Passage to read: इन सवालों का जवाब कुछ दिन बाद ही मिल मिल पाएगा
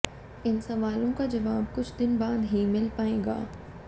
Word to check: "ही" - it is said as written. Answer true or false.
true